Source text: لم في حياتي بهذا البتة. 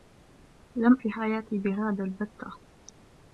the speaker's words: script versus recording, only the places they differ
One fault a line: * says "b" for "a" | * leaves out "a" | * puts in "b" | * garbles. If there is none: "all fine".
all fine